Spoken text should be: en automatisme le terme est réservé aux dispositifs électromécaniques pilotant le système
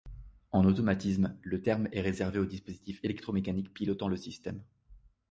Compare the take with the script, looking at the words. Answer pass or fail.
pass